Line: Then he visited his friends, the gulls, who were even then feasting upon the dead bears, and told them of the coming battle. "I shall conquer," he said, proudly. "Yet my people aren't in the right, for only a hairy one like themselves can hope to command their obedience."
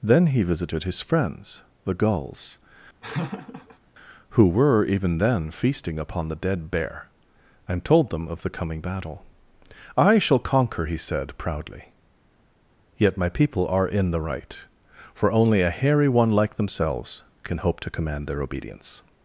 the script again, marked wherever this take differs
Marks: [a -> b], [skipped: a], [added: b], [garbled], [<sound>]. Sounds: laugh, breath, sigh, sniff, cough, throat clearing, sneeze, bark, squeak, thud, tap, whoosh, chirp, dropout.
Then he visited his friends, the gulls, [laugh] who were even then feasting upon the dead [bears, -> bear] and told them of the coming battle. "I shall conquer," he said, proudly. "Yet my people [aren't -> are] in the right, for only a hairy one like themselves can hope to command their obedience."